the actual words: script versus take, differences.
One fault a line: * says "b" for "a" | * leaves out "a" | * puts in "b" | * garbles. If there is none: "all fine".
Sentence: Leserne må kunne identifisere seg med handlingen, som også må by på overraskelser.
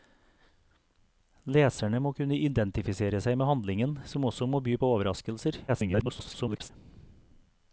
* garbles